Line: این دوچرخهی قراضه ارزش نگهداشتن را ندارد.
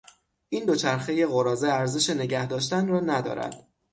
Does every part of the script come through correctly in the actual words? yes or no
yes